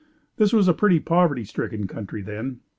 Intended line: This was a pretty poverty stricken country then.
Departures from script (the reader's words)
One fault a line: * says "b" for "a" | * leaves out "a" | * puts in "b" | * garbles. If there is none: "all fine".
all fine